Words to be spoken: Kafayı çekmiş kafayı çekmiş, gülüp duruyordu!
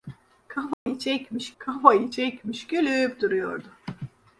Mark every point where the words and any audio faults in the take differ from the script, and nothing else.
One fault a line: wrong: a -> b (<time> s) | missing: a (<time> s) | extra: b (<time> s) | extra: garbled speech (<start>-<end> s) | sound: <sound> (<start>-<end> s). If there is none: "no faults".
sound: dropout (0.7-0.9 s)